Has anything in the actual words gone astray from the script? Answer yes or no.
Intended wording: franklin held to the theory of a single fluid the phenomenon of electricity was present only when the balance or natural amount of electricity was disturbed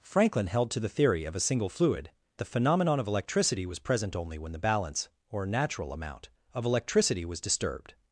no